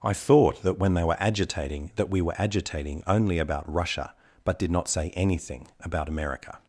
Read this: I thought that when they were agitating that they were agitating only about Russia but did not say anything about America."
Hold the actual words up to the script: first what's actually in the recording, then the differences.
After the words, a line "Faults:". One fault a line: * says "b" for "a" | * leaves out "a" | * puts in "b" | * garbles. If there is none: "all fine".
I thought that when they were agitating that we were agitating only about Russia but did not say anything about America."
Faults:
* says "we" for "they"